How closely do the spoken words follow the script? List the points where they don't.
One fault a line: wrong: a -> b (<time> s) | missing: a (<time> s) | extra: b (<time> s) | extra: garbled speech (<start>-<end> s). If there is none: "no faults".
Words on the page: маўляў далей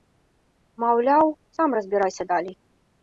extra: сам разбірайся (1.6 s)